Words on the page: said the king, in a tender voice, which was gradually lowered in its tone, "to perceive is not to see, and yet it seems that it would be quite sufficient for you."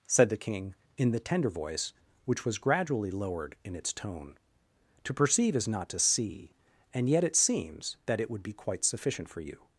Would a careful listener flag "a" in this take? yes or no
yes